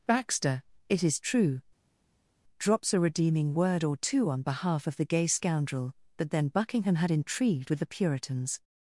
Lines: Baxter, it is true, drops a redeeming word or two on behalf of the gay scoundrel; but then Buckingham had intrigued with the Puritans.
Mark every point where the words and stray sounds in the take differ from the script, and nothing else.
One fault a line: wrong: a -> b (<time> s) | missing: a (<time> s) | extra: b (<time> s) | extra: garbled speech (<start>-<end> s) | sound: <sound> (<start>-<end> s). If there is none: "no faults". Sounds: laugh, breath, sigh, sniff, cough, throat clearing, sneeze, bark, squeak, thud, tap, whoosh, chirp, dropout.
no faults